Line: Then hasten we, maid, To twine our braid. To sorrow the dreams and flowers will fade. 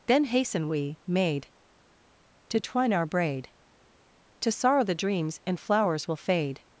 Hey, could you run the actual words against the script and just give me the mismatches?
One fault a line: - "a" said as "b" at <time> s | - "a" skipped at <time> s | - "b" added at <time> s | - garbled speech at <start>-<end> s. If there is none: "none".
none